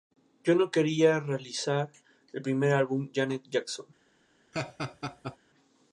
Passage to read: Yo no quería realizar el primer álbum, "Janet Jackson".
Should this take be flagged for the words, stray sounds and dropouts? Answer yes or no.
yes